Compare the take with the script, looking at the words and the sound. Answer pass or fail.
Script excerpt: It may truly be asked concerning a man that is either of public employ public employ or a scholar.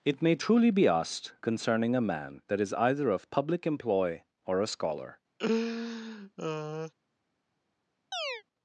fail